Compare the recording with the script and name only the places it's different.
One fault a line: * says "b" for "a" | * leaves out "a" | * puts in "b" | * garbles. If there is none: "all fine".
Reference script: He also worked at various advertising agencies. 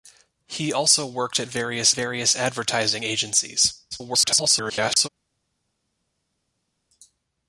* puts in "various"
* garbles